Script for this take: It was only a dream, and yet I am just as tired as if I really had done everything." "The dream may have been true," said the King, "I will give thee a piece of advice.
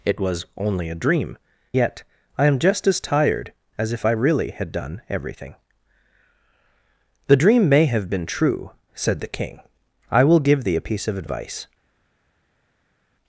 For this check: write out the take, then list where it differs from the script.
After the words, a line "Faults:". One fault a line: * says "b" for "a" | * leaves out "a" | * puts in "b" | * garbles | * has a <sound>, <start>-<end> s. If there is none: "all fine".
It was only a dream, yet I am just as tired as if I really had done everything." "The dream may have been true," said the King, "I will give thee a piece of advice.
Faults:
* leaves out "and"